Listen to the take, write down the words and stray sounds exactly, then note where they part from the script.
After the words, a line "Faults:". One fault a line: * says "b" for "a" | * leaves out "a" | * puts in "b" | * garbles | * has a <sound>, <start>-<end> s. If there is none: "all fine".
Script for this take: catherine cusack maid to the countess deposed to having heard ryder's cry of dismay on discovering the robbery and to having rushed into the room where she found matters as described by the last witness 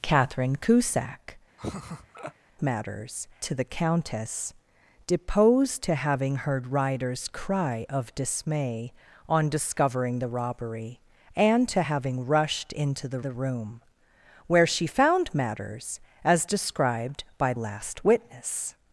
catherine cusack matters to the countess deposed to having heard ryder's cry of dismay on discovering the robbery and to having rushed into the the room where she found matters as described by last witness
Faults:
* has a laugh, 1.6-2.3 s
* says "matters" for "maid"
* puts in "the"
* leaves out "the"